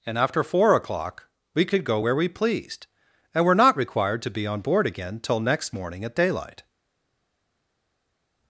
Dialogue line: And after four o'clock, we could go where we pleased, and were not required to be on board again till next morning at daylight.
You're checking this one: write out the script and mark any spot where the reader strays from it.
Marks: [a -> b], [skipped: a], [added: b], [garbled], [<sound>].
And after four o'clock, we could go where we pleased, and were not required to be on board again till next morning at daylight.